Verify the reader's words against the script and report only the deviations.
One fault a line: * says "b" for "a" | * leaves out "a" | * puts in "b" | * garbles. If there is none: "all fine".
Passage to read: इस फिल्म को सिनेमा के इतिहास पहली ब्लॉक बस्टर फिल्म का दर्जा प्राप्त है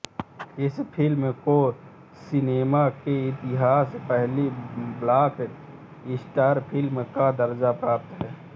all fine